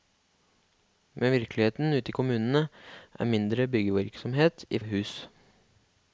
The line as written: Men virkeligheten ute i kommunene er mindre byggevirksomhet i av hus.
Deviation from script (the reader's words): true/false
false